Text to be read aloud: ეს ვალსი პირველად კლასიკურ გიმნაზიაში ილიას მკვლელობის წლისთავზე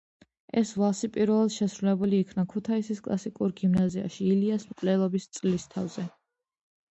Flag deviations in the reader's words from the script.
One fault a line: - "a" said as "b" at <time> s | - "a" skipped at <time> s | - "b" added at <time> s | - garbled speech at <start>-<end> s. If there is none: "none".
- "შესრულებული იქნა ქუთაისის" added at 1.6 s